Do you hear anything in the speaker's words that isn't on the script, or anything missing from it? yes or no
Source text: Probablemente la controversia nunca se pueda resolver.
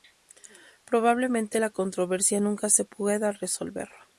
no